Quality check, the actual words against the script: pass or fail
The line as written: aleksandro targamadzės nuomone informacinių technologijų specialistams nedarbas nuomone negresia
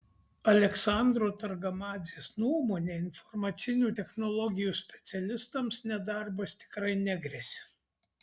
fail